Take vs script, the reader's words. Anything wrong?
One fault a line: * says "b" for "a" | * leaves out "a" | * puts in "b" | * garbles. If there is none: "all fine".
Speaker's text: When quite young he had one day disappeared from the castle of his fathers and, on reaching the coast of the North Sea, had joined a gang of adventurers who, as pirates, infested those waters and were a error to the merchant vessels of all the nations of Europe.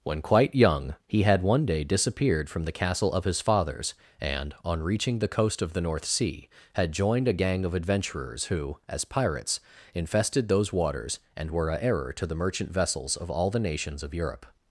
all fine